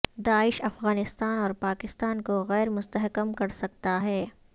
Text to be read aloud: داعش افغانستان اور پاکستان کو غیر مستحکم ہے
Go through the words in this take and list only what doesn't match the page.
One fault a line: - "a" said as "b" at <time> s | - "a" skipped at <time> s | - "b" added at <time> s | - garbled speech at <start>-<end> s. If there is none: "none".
- "کر سکتا" added at 3.3 s